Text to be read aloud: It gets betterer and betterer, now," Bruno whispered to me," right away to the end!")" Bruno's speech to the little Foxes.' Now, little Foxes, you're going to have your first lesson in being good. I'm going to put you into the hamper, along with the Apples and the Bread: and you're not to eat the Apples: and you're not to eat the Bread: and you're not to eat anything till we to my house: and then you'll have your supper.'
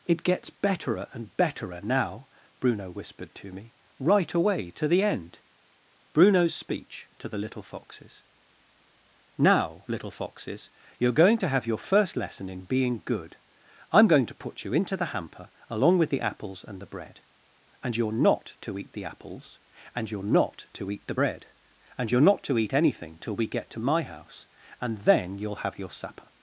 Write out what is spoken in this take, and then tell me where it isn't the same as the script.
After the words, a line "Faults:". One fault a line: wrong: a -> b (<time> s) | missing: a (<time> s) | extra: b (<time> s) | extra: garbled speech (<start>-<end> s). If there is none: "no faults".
It gets betterer and betterer, now," Bruno whispered to me," right away to the end!")" Bruno's speech to the little Foxes.' Now, little Foxes, you're going to have your first lesson in being good. I'm going to put you into the hamper, along with the Apples and the Bread: and you're not to eat the Apples: and you're not to eat the Bread: and you're not to eat anything till we get to my house: and then you'll have your supper.'
Faults:
extra: get (23.5 s)